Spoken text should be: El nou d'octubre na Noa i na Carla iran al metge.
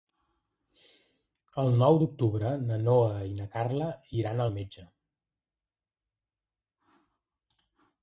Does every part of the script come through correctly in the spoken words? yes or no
yes